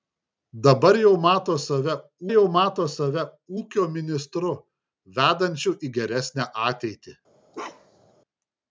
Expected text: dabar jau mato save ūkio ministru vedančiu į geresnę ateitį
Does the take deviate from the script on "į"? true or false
false